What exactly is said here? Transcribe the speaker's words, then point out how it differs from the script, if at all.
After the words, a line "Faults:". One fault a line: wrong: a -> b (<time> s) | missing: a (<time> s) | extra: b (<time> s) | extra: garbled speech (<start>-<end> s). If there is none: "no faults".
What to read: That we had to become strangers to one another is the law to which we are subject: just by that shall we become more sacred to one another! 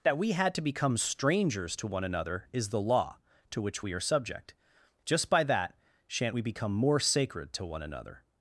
That we had to become strangers to one another is the law to which we are subject: just by that shan't we become more sacred to one another!
Faults:
wrong: shall -> shan't (6.1 s)